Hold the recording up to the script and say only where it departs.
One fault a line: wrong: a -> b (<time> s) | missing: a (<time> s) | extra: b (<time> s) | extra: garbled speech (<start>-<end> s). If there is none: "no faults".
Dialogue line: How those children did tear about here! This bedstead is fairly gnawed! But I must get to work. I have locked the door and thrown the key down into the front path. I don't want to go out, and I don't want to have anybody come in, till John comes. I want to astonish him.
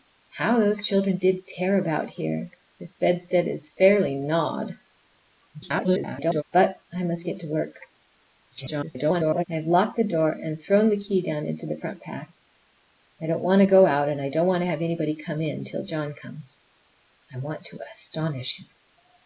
extra: garbled speech (5.5-6.4 s)
extra: garbled speech (8.5-9.5 s)